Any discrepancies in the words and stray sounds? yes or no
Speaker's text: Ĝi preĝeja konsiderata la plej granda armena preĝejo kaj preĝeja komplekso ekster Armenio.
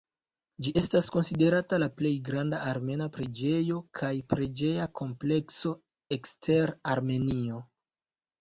yes